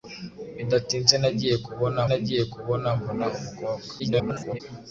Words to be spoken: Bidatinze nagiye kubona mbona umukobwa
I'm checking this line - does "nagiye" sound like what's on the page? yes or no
yes